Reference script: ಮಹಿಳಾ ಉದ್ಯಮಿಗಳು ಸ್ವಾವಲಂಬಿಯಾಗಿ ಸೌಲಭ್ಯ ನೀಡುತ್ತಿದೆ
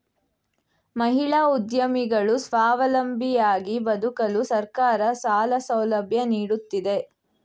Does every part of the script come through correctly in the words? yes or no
no